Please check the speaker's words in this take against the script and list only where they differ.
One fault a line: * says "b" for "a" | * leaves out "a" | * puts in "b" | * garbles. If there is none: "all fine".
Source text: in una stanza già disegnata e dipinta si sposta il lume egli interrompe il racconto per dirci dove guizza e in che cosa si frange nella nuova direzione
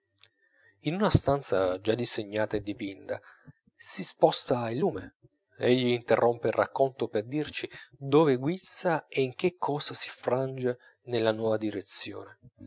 all fine